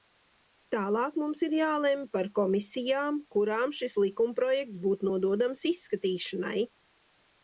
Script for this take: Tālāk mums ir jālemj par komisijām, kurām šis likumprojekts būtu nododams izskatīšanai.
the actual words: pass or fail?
pass